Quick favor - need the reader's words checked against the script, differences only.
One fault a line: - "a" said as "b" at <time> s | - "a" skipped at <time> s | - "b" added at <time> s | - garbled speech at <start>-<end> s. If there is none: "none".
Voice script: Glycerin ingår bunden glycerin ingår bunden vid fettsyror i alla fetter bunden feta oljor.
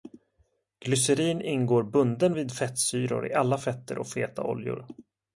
- "glycerin ingår bunden" skipped at 2.4 s
- "bunden" said as "och" at 4.0 s